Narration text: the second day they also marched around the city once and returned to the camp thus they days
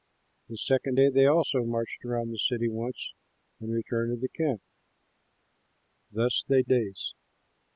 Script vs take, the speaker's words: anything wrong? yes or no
no